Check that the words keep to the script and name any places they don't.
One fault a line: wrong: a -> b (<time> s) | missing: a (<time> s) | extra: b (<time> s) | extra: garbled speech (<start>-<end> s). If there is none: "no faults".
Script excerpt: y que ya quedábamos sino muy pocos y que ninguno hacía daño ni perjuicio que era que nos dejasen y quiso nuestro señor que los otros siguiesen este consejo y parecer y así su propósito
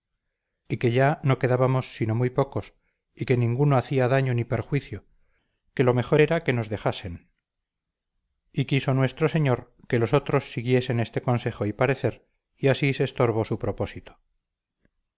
extra: no (1.2 s)
extra: lo mejor (5.8 s)
extra: se estorbó (12.9 s)